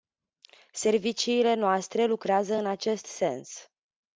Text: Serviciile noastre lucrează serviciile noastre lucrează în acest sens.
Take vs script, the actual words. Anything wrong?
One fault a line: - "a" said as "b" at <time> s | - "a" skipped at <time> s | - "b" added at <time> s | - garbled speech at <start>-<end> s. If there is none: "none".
- "serviciile noastre lucrează" skipped at 2.5 s